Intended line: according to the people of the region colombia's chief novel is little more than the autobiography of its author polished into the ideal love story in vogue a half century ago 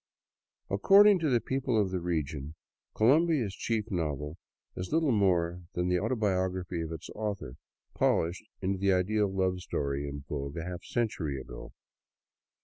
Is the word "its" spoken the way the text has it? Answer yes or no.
yes